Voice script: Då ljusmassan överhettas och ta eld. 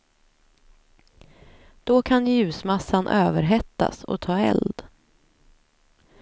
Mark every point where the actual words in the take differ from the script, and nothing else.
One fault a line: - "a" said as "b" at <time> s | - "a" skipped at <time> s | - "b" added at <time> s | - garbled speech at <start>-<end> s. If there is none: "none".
- "kan" added at 2.0 s